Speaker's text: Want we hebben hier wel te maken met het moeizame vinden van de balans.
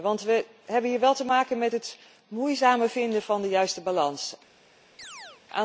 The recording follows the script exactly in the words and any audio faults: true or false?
false